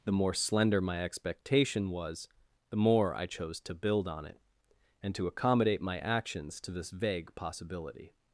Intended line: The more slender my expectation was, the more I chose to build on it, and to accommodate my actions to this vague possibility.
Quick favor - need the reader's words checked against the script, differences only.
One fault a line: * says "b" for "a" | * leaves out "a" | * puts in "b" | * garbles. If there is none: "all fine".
all fine